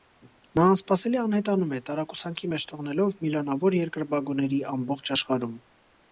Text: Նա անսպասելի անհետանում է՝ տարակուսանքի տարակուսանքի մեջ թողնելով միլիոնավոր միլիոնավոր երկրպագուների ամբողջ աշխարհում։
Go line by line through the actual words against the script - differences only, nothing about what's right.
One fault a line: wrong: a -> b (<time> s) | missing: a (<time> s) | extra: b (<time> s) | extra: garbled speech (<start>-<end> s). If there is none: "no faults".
missing: տարակուսանքի (2.5 s)
missing: միլիոնավոր (3.8 s)